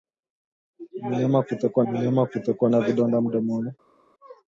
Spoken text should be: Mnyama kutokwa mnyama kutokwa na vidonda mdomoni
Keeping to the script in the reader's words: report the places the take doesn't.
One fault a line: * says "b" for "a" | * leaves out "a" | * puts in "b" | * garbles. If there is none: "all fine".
all fine